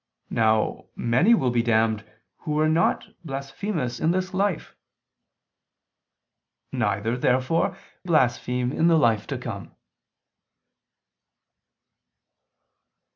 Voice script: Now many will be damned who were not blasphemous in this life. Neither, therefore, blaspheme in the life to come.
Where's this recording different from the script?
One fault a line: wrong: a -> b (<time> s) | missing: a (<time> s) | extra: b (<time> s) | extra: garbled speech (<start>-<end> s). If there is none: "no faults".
no faults